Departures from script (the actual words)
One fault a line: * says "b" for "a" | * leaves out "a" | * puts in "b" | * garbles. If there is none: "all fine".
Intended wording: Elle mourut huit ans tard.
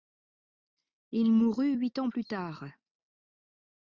* says "Il" for "Elle"
* puts in "plus"